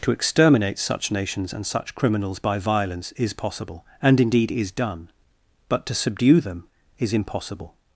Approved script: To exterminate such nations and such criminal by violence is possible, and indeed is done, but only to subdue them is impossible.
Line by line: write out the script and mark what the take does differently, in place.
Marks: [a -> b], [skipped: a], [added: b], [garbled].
To exterminate such nations and such [criminal -> criminals] by violence is possible, and indeed is done, but [skipped: only] to subdue them is impossible.